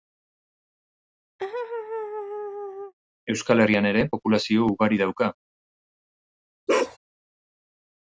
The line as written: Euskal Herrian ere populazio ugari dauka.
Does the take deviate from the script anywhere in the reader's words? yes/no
no